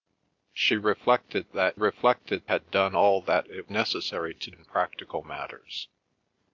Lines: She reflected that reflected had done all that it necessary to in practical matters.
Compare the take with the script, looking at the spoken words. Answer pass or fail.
pass